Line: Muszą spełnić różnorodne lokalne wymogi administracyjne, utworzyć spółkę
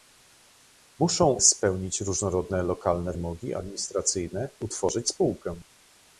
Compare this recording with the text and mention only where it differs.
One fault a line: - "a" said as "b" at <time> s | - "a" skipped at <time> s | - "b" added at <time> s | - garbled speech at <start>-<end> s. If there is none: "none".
none